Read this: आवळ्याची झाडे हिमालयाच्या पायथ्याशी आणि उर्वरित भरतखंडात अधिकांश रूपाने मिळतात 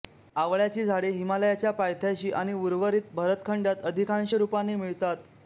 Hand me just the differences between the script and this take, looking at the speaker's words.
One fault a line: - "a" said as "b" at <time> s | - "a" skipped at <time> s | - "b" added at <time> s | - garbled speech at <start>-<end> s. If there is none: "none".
none